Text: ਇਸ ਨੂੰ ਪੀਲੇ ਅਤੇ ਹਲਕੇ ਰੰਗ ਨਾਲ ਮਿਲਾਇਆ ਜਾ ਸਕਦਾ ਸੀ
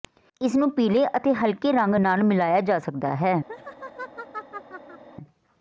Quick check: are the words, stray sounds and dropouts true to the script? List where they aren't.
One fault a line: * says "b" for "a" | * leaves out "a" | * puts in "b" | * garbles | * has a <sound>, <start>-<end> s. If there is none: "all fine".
* says "ਹੈ" for "ਸੀ"
* has a laugh, 3.5-5.0 s